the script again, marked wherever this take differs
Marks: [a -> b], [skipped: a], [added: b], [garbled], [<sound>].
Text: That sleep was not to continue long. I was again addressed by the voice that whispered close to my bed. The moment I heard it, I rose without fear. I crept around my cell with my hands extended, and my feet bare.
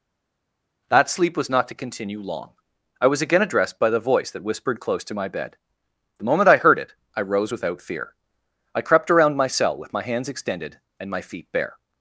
That sleep was not to continue long. I was again addressed by the voice that whispered close to my bed. The moment I heard it, I rose without fear. I crept around my cell with my hands extended, and my feet bare.